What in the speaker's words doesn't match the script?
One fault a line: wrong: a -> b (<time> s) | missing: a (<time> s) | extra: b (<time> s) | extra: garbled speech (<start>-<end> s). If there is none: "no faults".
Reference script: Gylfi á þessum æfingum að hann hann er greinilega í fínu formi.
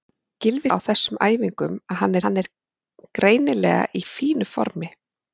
no faults